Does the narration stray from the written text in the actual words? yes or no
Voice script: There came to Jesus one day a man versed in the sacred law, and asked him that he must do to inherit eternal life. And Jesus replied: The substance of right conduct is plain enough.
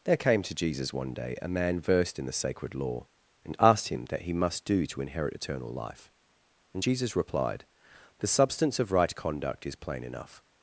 no